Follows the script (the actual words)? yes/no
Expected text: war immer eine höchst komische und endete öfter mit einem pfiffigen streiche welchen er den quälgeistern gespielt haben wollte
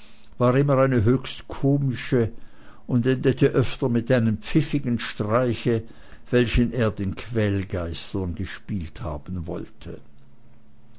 yes